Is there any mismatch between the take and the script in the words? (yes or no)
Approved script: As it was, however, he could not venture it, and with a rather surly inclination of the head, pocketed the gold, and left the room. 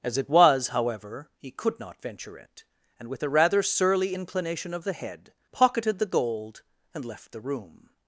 no